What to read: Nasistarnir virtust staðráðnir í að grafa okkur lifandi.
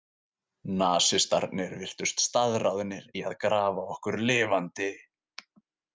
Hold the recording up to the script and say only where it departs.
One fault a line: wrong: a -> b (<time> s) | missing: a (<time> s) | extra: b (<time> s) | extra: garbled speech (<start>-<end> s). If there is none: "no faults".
no faults